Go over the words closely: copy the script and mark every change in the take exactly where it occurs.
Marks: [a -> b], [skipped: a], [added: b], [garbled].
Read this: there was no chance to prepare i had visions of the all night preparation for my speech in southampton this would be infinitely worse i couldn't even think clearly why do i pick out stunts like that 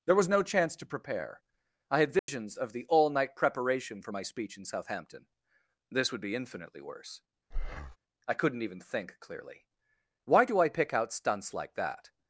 there was no chance to prepare i had visions of the all night preparation for my speech in southampton this would be infinitely worse i couldn't even think clearly why do i pick out stunts like that